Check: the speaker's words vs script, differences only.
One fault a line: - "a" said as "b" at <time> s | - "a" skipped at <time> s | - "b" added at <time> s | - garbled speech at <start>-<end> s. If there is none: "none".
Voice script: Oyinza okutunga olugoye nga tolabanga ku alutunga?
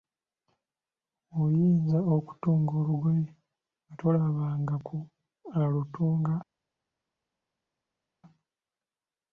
none